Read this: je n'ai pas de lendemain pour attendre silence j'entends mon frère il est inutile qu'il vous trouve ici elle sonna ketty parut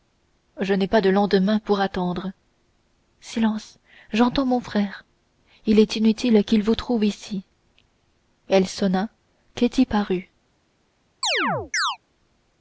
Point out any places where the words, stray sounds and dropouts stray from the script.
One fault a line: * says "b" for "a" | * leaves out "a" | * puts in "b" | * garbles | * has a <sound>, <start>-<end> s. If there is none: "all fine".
* has a chirp, 11.2-12.0 s